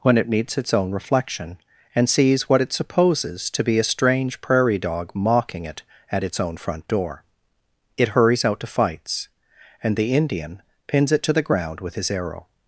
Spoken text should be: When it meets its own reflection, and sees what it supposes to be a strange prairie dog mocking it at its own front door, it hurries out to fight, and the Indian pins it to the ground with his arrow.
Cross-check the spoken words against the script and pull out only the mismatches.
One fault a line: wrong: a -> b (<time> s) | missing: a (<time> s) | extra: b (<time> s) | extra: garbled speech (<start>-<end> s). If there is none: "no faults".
wrong: fight -> fights (8.7 s)